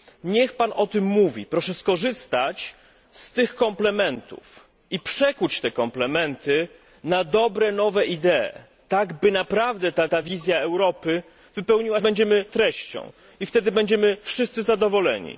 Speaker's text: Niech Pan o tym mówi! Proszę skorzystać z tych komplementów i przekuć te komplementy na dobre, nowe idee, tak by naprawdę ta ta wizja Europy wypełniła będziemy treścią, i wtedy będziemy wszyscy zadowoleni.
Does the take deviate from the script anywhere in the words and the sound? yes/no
no